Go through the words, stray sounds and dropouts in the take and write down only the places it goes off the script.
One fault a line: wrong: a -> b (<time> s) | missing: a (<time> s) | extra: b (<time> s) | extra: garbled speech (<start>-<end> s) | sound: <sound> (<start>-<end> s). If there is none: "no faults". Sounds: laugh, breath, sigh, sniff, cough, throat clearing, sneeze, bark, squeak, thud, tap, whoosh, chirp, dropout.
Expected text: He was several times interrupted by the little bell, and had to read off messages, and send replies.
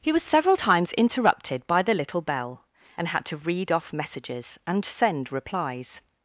no faults